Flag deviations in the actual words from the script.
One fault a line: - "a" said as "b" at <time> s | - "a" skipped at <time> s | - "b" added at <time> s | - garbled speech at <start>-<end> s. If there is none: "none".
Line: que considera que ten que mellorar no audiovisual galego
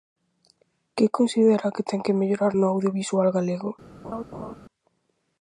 none